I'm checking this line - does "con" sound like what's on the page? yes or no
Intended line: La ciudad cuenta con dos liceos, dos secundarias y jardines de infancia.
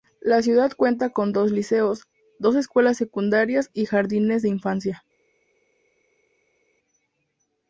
yes